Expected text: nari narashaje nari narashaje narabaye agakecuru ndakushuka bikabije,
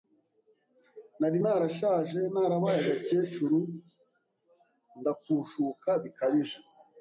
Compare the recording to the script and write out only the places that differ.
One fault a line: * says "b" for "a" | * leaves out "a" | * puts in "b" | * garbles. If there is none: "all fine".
* leaves out "nari narashaje"